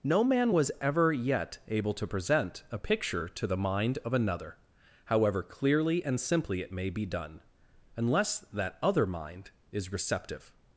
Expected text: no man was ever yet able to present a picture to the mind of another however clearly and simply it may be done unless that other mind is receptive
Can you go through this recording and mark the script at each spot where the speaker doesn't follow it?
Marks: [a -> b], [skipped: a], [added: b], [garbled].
no man was ever yet able to present a picture to the mind of another however clearly and simply it may be done unless that other mind is receptive